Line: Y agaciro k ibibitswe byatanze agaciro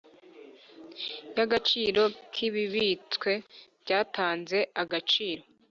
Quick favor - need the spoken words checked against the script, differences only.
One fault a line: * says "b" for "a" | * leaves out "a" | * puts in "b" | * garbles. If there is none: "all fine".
all fine